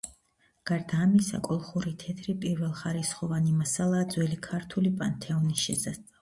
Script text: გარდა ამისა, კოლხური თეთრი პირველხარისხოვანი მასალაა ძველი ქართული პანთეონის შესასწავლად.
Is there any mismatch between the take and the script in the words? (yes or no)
no